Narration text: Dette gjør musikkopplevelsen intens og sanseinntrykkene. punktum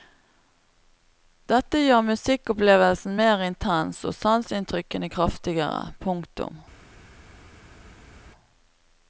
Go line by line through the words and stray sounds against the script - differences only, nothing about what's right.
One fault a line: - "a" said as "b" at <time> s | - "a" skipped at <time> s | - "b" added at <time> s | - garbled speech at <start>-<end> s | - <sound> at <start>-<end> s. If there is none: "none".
- "mer" added at 3.2 s
- "kraftigere" added at 5.2 s